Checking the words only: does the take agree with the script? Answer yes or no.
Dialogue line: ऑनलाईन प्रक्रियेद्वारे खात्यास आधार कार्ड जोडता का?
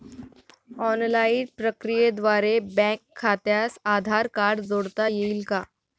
no